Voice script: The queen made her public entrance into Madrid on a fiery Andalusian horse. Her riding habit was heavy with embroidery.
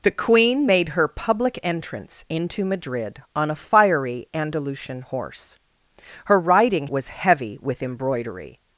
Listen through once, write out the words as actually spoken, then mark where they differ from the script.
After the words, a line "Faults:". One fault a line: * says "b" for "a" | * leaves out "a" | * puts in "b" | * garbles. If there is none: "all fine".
The queen made her public entrance into Madrid on a fiery Andalusian horse. Her riding was heavy with embroidery.
Faults:
* leaves out "habit"